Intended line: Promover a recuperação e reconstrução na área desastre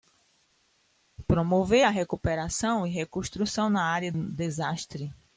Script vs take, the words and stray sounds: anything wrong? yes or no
no